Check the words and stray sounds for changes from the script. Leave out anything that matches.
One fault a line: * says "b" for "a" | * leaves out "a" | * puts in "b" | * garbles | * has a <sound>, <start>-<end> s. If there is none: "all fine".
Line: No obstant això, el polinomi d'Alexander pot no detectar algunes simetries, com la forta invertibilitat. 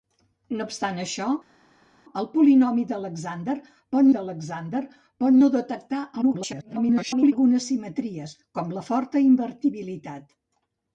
* puts in "d'Alexander pot"
* garbles